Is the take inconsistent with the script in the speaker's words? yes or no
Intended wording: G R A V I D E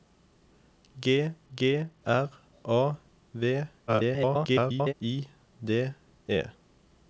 yes